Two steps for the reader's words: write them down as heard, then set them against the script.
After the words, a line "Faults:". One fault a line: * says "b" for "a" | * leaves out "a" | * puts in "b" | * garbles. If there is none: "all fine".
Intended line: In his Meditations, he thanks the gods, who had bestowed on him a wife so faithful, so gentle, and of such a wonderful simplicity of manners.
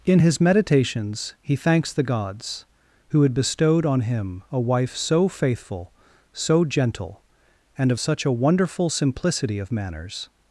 In his Meditations, he thanks the gods, who had bestowed on him a wife so faithful, so gentle, and of such a wonderful simplicity of manners.
Faults:
all fine